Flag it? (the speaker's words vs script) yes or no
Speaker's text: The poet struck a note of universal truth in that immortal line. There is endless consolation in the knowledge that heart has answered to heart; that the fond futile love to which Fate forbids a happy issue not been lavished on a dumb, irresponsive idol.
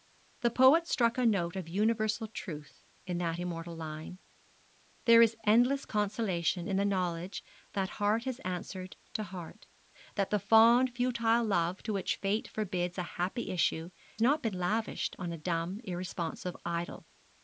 no